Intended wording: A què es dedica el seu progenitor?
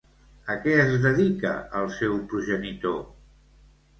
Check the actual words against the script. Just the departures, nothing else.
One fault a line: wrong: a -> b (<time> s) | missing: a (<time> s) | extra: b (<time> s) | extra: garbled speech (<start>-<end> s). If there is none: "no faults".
no faults